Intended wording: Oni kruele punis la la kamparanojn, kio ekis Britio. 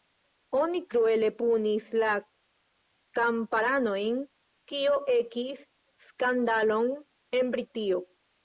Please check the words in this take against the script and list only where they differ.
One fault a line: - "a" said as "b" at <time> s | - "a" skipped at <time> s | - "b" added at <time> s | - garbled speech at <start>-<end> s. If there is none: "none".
- "la" skipped at 2.1 s
- "skandalon en" added at 6.1 s